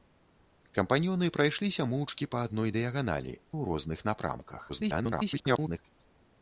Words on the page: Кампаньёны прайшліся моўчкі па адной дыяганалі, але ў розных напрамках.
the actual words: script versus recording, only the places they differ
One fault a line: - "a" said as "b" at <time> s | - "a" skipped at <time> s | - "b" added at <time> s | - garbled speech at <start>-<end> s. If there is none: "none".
- "але" skipped at 3.3 s
- garbled speech at 4.7-5.8 s